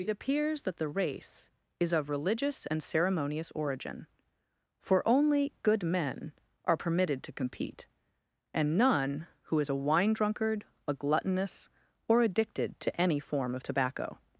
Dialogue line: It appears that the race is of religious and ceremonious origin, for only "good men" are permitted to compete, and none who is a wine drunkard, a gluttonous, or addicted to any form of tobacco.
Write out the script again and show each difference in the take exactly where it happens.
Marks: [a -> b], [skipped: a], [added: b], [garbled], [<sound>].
It appears that the race is of religious and ceremonious origin, for only "good men" are permitted to compete, and none who is a wine drunkard, a gluttonous, or addicted to any form of tobacco.